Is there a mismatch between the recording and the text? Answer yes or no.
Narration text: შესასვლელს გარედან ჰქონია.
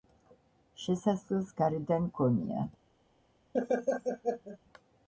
no